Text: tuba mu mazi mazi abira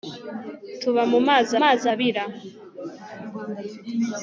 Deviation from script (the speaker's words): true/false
false